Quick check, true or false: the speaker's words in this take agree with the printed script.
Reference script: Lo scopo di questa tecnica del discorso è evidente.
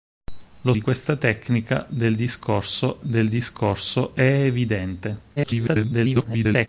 false